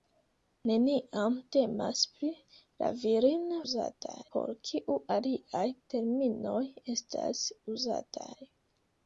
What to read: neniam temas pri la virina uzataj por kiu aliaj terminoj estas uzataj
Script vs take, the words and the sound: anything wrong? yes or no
no